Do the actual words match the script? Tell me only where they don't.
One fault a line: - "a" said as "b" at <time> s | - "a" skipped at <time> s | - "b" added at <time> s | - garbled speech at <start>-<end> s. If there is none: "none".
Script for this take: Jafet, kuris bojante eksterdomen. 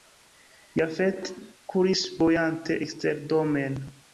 none